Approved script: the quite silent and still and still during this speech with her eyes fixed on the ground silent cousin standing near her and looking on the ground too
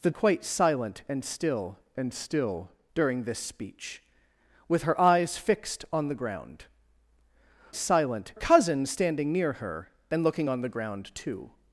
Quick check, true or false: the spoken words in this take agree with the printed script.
true